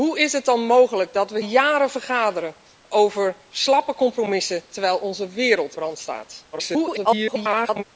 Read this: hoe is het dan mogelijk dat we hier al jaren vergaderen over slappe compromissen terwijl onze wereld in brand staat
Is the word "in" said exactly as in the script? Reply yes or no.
no